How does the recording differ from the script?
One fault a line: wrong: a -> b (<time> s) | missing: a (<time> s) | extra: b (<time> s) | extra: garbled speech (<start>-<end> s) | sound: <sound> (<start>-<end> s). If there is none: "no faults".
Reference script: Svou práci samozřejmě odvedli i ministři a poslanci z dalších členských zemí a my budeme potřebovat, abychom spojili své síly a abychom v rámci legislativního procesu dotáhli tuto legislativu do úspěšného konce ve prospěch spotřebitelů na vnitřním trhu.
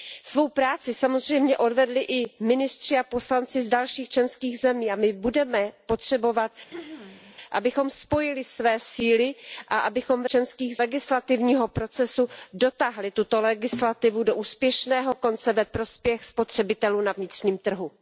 sound: throat clearing (6.7-7.4 s)
wrong: rámci -> členských (10.3 s)